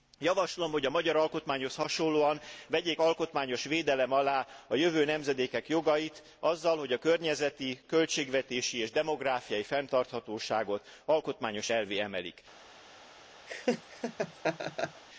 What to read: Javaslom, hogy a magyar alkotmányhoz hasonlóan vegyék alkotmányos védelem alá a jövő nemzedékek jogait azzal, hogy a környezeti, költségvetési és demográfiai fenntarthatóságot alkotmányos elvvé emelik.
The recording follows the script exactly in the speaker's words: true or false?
true